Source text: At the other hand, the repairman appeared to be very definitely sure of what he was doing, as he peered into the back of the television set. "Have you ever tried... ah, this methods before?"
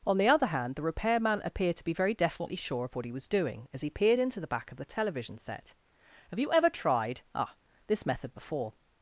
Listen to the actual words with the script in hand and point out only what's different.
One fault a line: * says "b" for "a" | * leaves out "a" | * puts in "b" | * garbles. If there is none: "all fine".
* says "On" for "At"
* says "method" for "methods"